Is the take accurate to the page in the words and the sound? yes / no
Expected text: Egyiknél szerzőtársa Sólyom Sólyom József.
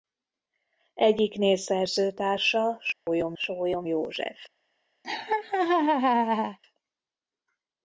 no